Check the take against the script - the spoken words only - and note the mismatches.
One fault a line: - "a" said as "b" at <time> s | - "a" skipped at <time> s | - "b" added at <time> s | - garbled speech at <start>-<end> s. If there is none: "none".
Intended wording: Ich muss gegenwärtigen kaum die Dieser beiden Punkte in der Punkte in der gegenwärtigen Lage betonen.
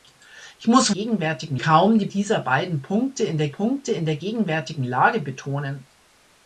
none